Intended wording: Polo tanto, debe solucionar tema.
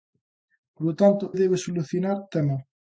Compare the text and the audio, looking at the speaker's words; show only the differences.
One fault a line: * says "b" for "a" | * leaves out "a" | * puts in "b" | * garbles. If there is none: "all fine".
all fine